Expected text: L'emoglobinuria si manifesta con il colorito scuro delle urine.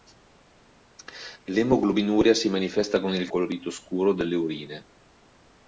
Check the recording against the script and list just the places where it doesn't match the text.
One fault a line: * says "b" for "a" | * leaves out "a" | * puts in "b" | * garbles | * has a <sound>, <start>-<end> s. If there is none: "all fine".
all fine